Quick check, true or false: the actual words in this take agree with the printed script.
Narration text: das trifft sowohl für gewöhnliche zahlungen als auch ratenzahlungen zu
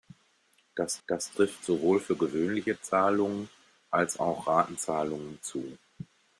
false